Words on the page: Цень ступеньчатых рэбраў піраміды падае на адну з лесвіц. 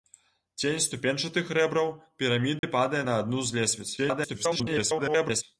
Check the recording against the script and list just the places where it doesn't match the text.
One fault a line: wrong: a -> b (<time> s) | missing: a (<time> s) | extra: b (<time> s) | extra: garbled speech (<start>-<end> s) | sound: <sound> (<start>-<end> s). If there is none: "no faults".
sound: dropout (2.6-2.6 s)
extra: garbled speech (4.0-5.4 s)